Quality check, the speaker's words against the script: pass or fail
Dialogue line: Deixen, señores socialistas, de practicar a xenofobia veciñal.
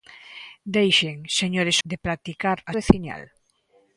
fail